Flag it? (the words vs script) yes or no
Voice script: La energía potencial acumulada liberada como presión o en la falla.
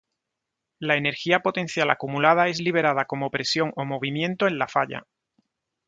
yes